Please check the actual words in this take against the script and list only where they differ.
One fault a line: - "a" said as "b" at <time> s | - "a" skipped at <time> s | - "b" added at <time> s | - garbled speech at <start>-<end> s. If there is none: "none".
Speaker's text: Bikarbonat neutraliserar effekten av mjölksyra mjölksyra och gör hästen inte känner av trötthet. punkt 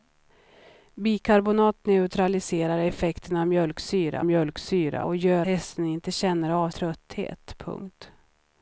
none